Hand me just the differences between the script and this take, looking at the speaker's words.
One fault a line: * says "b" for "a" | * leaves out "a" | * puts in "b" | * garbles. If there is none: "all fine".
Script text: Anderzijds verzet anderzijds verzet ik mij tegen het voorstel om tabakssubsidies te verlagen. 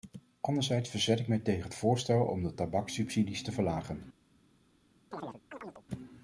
* leaves out "anderzijds verzet"
* puts in "de"